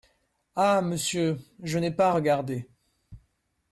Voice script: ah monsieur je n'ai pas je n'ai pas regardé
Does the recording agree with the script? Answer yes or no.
no